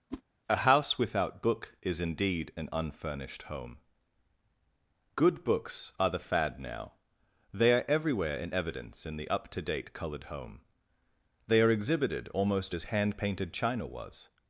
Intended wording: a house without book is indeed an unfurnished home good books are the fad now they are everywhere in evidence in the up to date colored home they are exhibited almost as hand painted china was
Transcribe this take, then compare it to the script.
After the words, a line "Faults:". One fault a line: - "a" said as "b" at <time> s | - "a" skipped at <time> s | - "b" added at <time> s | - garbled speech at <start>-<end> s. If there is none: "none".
a house without book is indeed an unfurnished home good books are the fad now they are everywhere in evidence in the up to date colored home they are exhibited almost as hand painted china was
Faults:
none